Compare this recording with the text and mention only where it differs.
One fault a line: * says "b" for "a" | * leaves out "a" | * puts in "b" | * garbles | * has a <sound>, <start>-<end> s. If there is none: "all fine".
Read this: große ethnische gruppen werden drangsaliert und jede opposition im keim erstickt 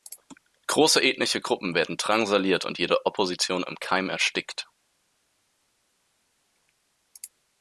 all fine